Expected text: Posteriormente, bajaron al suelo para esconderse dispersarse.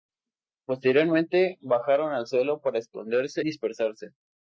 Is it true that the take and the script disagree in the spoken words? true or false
false